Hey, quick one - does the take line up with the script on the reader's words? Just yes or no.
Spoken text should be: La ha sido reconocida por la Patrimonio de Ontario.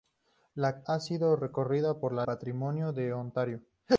yes